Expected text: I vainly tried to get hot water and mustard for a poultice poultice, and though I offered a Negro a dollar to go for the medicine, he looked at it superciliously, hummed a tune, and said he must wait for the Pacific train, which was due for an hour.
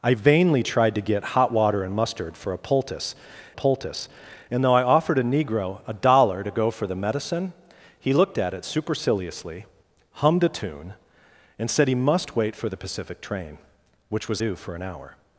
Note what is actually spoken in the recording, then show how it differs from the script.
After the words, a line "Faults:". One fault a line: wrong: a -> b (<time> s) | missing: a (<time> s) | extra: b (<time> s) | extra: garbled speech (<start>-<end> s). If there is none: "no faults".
I vainly tried to get hot water and mustard for a poultice poultice, and though I offered a Negro a dollar to go for the medicine, he looked at it superciliously, hummed a tune, and said he must wait for the Pacific train, which was due for an hour.
Faults:
no faults